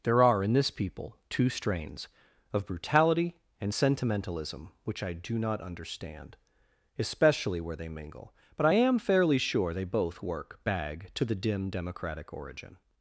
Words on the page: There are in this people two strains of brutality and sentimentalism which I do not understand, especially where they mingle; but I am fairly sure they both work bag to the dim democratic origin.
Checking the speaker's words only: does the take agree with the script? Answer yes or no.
yes